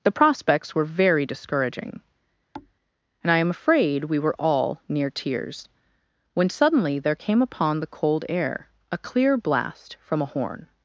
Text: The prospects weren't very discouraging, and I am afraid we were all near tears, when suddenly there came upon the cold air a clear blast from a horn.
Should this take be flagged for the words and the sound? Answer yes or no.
yes